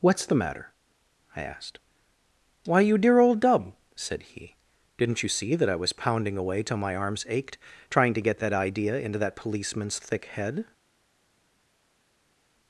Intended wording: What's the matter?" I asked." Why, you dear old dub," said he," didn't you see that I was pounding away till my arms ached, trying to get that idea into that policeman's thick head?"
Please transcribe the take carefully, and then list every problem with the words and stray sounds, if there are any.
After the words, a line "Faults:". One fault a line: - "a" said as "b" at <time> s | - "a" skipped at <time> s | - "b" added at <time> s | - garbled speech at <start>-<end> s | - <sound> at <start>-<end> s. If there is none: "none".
What's the matter?" I asked." Why, you dear old dub," said he," didn't you see that I was pounding away till my arms ached, trying to get that idea into that policeman's thick head?"
Faults:
none